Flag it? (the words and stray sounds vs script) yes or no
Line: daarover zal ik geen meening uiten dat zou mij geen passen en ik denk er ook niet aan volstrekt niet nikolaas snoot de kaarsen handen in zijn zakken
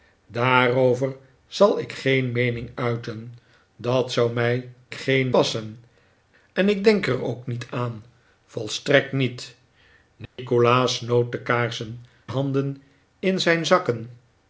yes